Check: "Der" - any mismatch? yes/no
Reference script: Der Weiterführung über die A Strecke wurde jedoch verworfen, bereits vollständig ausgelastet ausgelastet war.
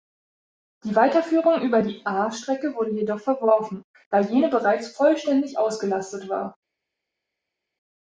yes